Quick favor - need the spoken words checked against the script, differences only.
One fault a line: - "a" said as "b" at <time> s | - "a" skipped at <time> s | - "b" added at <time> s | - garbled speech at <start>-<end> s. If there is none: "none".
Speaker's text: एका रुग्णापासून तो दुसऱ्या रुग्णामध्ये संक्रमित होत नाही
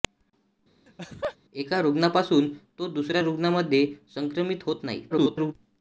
- garbled speech at 5.1-5.5 s